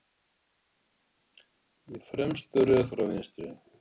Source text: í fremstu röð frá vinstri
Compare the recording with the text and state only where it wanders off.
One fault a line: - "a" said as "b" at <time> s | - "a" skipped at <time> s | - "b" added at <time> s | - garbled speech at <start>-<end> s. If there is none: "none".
none